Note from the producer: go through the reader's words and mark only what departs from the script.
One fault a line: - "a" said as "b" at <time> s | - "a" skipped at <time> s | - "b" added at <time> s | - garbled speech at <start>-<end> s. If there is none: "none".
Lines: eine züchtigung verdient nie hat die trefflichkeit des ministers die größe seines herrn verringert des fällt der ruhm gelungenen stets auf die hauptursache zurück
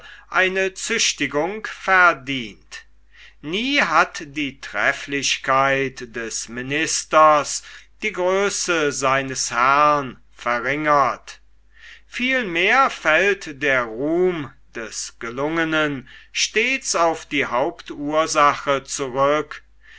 - "des" said as "vielmehr" at 12.1 s
- "des" added at 14.7 s